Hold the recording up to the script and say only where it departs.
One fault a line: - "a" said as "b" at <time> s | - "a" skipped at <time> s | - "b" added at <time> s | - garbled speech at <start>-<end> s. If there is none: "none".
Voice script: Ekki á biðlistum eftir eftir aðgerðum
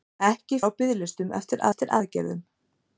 none